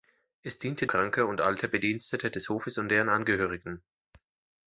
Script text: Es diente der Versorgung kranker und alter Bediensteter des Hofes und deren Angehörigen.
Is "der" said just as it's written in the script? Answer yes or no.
no